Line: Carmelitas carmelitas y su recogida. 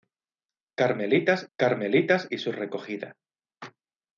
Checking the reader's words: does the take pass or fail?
pass